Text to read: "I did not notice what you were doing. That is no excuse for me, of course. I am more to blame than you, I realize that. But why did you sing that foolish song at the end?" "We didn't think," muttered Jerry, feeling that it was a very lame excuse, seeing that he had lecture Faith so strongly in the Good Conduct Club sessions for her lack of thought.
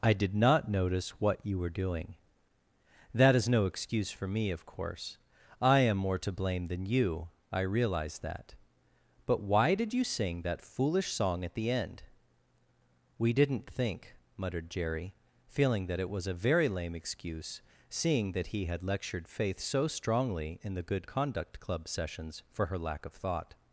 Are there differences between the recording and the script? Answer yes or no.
yes